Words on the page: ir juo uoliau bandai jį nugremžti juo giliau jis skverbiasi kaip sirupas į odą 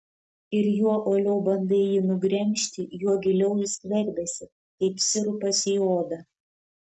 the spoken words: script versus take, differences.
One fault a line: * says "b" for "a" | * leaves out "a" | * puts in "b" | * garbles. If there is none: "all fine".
all fine